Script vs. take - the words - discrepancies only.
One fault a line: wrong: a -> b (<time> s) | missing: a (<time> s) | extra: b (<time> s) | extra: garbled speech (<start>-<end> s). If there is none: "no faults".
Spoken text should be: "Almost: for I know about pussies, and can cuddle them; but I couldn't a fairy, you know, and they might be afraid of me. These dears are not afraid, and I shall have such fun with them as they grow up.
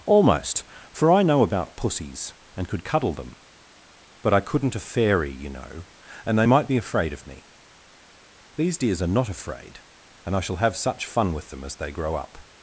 wrong: can -> could (2.7 s)